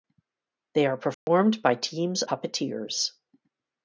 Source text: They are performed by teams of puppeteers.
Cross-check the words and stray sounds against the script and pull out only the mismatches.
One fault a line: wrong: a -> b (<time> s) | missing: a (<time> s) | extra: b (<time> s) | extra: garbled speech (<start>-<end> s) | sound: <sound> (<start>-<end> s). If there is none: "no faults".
sound: dropout (1.1-1.3 s)
missing: of (2.2 s)